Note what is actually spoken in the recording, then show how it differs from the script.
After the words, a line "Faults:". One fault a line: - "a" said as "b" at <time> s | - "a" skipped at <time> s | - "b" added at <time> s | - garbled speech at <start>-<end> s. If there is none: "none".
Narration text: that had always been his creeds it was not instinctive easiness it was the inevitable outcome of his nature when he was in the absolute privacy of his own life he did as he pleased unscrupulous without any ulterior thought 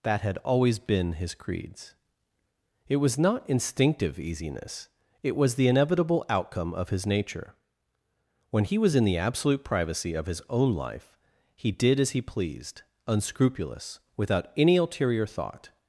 that had always been his creeds it was not instinctive easiness it was the inevitable outcome of his nature when he was in the absolute privacy of his own life he did as he pleased unscrupulous without any ulterior thought
Faults:
none